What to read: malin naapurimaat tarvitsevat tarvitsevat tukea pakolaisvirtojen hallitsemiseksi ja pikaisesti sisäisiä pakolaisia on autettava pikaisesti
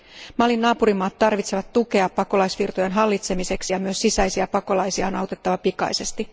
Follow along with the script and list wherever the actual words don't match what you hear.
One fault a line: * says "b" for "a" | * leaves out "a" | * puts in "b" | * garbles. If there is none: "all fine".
* leaves out "tarvitsevat"
* says "myös" for "pikaisesti"